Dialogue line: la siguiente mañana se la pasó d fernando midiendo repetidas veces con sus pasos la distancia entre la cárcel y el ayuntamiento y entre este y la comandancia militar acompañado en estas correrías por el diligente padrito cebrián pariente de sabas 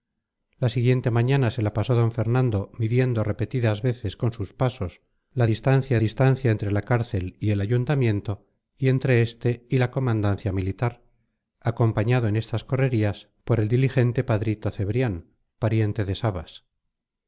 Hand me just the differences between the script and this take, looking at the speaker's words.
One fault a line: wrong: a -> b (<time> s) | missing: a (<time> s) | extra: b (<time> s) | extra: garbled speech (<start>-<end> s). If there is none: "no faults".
extra: distancia (6.0 s)